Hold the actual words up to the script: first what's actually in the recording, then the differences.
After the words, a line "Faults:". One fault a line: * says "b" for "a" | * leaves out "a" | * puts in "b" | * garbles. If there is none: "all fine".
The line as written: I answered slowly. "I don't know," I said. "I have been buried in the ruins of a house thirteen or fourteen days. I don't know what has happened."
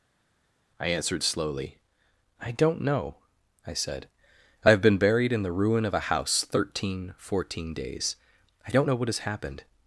I answered slowly. "I don't know," I said. "I have been buried in the ruin of a house thirteen fourteen days. I don't know what has happened."
Faults:
* says "ruin" for "ruins"
* leaves out "or"